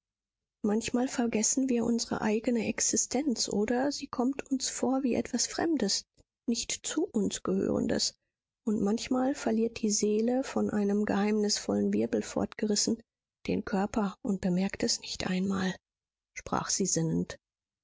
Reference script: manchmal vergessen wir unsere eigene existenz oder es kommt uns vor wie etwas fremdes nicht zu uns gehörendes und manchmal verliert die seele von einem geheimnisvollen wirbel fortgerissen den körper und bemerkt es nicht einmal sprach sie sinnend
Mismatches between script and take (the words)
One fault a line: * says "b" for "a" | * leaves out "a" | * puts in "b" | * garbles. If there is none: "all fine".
* says "sie" for "es"